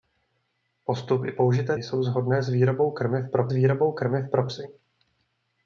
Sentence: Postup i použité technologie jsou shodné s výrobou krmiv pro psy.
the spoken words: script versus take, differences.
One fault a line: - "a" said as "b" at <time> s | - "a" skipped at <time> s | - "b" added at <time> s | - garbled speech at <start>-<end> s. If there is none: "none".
- "technologie" skipped at 1.8 s
- "výrobou krmiv pro" added at 3.5 s